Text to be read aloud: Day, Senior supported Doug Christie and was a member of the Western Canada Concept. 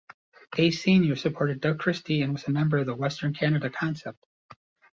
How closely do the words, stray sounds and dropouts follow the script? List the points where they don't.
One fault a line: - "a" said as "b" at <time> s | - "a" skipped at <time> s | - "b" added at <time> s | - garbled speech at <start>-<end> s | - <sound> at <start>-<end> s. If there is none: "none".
none